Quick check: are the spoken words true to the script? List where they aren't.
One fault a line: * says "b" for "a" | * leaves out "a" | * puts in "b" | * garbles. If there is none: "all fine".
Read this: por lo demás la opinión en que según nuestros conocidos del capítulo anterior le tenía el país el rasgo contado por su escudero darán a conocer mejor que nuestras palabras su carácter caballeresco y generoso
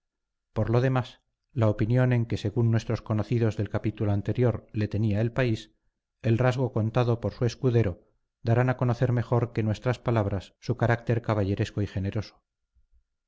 all fine